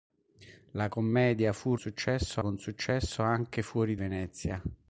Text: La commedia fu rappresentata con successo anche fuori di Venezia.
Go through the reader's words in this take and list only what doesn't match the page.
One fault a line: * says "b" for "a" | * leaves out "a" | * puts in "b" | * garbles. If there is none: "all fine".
* says "successo" for "rappresentata"
* leaves out "di"